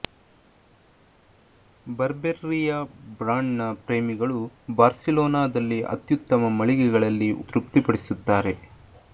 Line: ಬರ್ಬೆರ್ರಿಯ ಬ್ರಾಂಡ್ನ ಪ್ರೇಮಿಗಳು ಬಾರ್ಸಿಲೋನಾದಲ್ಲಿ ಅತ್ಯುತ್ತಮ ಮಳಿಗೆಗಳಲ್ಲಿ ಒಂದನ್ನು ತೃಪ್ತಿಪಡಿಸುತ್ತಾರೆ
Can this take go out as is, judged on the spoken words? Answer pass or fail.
fail